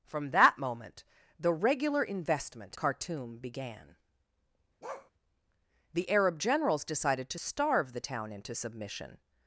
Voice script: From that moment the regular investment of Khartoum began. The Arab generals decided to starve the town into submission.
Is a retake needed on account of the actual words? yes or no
yes